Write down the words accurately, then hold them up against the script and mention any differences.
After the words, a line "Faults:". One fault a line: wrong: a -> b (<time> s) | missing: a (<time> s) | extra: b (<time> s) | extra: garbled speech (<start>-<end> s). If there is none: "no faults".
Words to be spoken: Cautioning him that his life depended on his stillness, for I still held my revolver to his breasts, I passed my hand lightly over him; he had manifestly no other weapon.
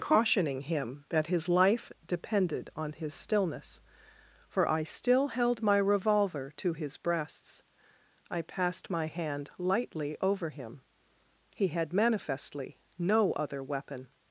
Cautioning him that his life depended on his stillness, for I still held my revolver to his breasts, I passed my hand lightly over him; he had manifestly no other weapon.
Faults:
no faults